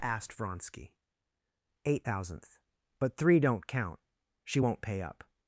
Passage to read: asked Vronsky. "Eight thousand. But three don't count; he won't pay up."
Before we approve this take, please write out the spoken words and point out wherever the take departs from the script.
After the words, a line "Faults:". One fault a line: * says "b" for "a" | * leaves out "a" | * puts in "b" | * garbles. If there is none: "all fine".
asked Vronsky. "Eight thousandth. But three don't count; she won't pay up."
Faults:
* says "thousandth" for "thousand"
* says "she" for "he"